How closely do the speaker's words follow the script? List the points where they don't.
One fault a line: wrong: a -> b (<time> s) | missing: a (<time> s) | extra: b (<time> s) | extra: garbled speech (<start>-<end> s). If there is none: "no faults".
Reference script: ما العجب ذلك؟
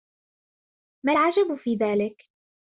extra: في (1.6 s)